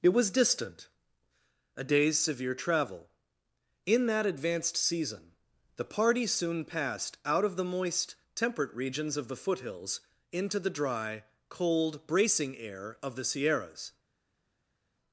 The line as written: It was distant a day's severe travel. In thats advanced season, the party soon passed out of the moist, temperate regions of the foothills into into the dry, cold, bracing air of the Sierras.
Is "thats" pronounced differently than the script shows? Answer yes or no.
yes